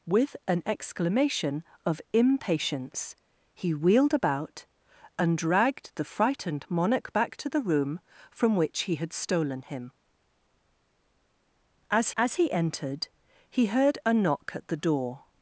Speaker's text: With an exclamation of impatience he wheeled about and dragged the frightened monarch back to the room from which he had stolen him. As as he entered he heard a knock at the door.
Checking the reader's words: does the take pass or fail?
pass